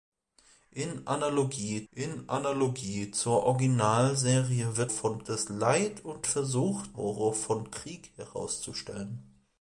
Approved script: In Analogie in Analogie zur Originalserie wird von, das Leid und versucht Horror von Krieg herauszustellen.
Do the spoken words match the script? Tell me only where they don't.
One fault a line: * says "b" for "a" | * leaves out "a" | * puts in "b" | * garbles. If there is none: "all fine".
all fine